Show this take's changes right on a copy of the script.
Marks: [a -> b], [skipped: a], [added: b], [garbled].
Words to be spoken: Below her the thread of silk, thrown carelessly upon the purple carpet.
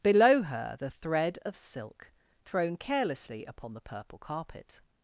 Below her the thread of silk, thrown carelessly upon the purple carpet.